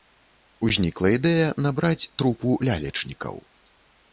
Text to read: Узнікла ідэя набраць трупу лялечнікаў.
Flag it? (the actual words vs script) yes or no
no